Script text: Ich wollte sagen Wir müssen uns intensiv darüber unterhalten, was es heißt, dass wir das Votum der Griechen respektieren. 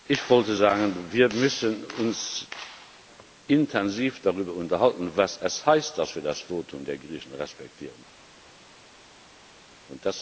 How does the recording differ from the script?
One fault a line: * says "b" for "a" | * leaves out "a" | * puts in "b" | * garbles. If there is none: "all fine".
all fine